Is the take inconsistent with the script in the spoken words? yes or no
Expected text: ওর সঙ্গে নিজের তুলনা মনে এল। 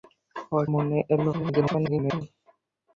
yes